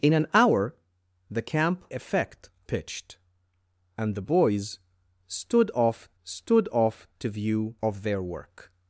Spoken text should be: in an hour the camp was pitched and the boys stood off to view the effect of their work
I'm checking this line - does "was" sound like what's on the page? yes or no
no